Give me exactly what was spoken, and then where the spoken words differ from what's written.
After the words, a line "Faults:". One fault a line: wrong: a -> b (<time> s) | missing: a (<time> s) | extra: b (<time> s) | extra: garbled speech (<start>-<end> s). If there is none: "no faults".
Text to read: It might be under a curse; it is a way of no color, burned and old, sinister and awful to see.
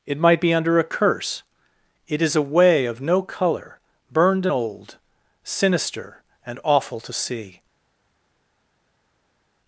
It might be under a curse; it is a way of no color, burned old, sinister and awful to see.
Faults:
missing: and (4.5 s)